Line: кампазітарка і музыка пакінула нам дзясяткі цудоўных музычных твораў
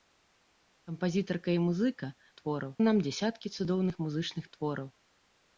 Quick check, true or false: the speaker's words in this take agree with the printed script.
false